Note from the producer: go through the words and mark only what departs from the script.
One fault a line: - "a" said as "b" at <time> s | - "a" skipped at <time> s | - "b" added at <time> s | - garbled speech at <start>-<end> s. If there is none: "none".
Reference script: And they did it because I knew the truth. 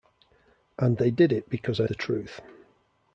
- "knew" skipped at 1.9 s